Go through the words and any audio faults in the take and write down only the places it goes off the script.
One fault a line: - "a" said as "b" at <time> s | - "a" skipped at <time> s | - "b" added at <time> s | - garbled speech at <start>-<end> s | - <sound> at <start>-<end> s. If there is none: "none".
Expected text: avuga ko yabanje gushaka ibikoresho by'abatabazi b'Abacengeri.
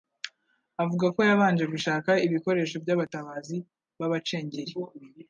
none